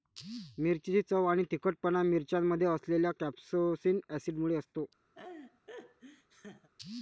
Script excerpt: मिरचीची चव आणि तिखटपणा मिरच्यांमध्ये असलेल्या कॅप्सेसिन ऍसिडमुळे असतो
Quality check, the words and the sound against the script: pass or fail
fail